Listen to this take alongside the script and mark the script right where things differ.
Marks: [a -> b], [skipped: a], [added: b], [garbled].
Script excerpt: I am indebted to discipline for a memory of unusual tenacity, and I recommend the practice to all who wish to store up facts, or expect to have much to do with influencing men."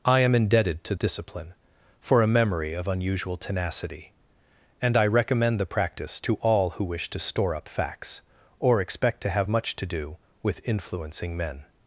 I am indebted to discipline for a memory of unusual tenacity, and I recommend the practice to all who wish to store up facts, or expect to have much to do with influencing men."